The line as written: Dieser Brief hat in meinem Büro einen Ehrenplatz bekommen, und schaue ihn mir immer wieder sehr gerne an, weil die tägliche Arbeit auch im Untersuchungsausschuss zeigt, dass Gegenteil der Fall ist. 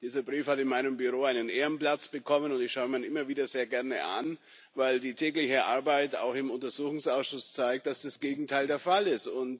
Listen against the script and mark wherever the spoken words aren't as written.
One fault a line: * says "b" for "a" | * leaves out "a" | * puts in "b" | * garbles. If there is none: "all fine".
* puts in "ich"
* puts in "das"